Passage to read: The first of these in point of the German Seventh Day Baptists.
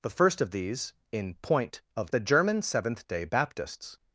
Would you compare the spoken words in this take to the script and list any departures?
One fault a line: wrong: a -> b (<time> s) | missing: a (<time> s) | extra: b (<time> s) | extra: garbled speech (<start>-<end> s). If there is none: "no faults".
no faults